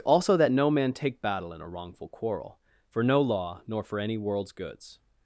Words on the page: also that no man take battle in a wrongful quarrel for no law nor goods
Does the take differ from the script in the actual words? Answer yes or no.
yes